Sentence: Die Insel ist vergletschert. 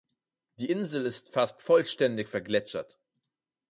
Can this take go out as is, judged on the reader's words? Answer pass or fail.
fail